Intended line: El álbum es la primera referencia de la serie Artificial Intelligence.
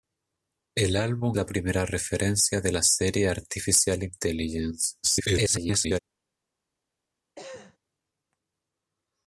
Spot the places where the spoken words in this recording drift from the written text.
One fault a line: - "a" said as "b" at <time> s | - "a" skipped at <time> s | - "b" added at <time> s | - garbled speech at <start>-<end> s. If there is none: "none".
- "es" skipped at 1.4 s
- garbled speech at 5.0-6.0 s